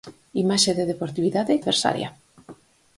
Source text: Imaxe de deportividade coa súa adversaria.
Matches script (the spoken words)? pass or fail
fail